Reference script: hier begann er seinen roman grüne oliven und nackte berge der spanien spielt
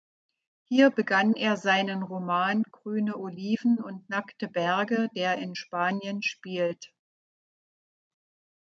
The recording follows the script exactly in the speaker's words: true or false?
false